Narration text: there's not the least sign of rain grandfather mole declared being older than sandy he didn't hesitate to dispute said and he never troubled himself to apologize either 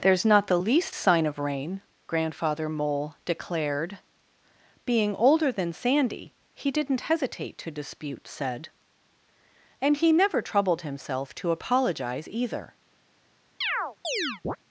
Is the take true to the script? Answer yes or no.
yes